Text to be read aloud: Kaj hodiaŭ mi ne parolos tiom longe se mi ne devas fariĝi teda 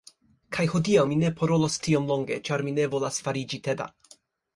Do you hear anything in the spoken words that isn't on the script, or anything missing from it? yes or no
yes